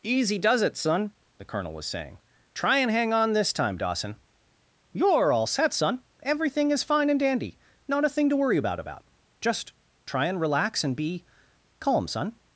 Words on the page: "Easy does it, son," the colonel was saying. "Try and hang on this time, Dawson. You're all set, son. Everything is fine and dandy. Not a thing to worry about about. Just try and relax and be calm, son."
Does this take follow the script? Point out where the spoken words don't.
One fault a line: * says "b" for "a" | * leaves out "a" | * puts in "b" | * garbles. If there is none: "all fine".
all fine